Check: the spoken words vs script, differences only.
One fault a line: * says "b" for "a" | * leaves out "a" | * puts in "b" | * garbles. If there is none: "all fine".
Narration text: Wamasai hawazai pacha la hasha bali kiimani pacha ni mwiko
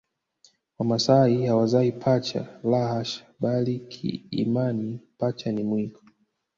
all fine